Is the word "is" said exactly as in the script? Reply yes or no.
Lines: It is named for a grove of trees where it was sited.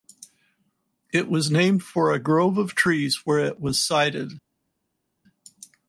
no